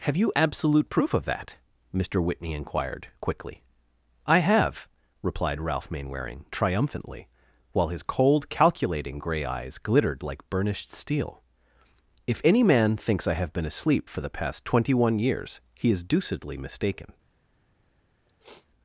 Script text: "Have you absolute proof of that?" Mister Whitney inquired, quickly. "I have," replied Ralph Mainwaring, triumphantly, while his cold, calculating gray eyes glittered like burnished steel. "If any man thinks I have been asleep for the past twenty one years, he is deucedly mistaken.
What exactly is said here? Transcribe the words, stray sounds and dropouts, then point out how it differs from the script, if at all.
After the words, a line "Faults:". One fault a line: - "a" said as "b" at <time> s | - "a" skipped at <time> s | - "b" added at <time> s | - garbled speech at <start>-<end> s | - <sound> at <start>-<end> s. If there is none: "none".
"Have you absolute proof of that?" Mister Whitney inquired, quickly. "I have," replied Ralph Mainwaring, triumphantly, while his cold, calculating gray eyes glittered like burnished steel. "If any man thinks I have been asleep for the past twenty one years, he is deucedly mistaken.
Faults:
- sniff at 18.3-18.7 s